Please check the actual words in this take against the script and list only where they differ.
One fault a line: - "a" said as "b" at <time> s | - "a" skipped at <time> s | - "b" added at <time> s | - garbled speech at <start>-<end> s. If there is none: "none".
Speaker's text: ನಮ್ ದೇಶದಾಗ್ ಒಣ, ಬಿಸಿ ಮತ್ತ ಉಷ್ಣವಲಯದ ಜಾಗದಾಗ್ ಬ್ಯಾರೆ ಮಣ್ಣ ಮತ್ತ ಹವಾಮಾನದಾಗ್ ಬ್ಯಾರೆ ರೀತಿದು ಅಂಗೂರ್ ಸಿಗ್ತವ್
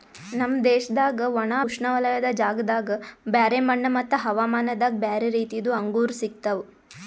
- "ಬಿಸಿ ಮತ್ತ" skipped at 1.5 s